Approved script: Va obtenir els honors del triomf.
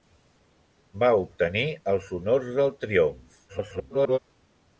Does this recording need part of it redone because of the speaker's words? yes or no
yes